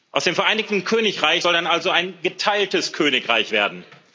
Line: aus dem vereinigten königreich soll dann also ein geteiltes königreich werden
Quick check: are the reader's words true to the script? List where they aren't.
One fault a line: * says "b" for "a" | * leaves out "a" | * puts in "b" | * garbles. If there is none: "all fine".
all fine